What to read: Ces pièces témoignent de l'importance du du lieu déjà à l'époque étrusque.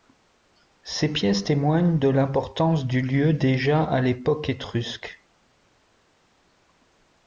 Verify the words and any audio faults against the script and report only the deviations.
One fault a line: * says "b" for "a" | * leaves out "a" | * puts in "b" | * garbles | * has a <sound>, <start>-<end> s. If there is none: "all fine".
* leaves out "du"